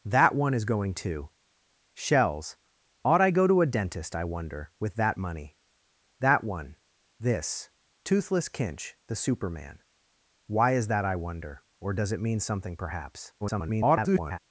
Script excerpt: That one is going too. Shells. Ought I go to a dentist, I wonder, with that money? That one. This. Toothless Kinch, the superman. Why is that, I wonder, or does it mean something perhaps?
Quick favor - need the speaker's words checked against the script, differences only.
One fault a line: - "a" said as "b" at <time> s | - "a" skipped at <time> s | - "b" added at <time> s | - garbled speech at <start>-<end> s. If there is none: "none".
- garbled speech at 13.4-14.4 s